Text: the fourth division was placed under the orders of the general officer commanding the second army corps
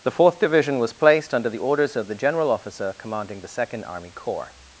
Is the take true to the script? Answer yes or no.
yes